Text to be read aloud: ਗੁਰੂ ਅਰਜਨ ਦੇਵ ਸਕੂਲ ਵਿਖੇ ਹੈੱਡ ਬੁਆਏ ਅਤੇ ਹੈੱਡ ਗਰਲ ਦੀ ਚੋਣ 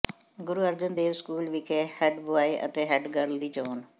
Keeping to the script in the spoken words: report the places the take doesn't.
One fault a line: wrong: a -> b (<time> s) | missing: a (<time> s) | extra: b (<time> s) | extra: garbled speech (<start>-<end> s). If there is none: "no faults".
no faults